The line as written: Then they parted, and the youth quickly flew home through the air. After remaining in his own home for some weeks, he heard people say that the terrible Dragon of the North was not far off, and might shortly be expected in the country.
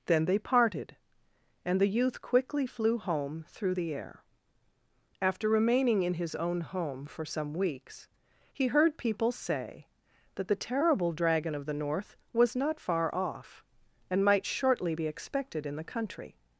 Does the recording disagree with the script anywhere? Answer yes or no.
no